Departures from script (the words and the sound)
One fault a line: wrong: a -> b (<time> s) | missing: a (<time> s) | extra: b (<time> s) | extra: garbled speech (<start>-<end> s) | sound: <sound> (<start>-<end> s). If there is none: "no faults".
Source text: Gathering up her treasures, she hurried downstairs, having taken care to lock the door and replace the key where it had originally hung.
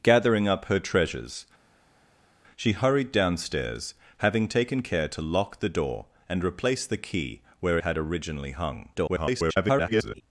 missing: it (7.8 s)
extra: garbled speech (8.9-10.2 s)